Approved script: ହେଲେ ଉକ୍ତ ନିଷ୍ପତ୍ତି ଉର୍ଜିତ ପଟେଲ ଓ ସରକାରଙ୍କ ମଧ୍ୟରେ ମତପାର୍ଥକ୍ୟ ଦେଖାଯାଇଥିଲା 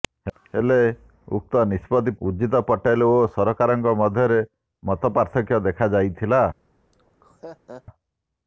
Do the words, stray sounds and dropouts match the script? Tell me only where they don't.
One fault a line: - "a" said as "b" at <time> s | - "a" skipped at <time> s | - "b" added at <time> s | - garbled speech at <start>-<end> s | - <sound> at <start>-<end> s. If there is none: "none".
- laugh at 6.9-7.8 s